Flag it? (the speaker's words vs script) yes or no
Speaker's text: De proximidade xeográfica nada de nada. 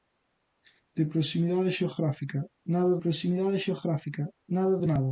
yes